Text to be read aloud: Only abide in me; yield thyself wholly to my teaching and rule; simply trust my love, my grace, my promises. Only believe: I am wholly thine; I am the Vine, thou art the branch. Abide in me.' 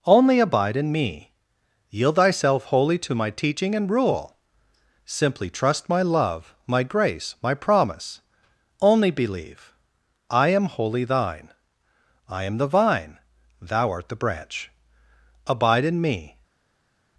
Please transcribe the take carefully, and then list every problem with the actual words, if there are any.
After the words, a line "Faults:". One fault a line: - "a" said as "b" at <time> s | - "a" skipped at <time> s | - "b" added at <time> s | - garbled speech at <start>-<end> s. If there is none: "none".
Only abide in me; yield thyself wholly to my teaching and rule; simply trust my love, my grace, my promise. Only believe: I am wholly thine; I am the Vine, thou art the branch. Abide in me.'
Faults:
- "promises" said as "promise" at 7.5 s